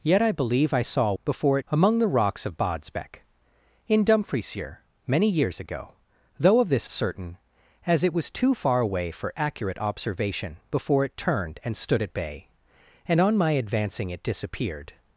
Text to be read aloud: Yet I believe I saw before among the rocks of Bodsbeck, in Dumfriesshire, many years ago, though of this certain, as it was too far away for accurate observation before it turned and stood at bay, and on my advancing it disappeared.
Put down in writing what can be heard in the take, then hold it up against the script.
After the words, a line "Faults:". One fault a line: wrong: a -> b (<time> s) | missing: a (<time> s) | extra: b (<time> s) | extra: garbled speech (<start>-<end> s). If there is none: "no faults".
Yet I believe I saw before among the rocks of Bodsbeck, in Dumfriesshire, many years ago, though of this certain, as it was too far away for accurate observation before it turned and stood at bay, and on my advancing it disappeared.
Faults:
no faults